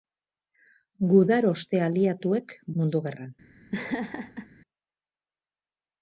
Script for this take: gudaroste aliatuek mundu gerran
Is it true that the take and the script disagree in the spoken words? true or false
false